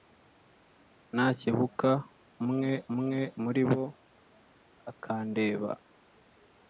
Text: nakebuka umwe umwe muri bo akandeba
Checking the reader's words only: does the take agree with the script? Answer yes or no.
yes